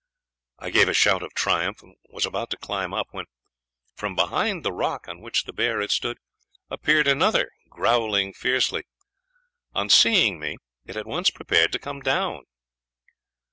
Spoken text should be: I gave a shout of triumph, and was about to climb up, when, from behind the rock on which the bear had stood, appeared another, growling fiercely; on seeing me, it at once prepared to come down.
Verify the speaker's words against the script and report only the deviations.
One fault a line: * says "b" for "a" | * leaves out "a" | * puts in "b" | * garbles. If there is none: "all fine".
all fine